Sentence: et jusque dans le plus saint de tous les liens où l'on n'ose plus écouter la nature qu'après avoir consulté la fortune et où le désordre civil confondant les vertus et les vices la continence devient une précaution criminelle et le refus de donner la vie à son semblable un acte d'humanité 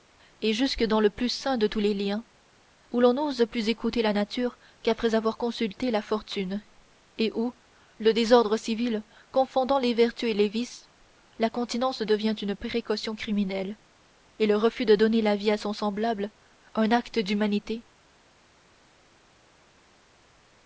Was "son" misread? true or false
false